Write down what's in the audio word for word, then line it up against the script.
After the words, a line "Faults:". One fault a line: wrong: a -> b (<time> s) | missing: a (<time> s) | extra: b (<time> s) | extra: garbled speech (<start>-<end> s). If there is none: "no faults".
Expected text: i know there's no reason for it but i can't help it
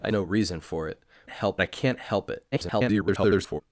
i no reason for it help i can't help it [garbled]
Faults:
missing: know there's (0.1 s)
wrong: but -> help (1.3 s)
extra: garbled speech (2.5-3.6 s)